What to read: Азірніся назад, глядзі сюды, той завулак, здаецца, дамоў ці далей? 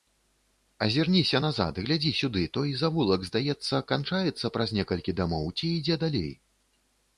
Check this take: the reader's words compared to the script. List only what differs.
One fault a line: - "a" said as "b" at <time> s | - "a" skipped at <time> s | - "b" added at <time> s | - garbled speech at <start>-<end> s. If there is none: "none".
- "канчаецца праз некалькі" added at 3.9 s
- "ідзе" added at 5.8 s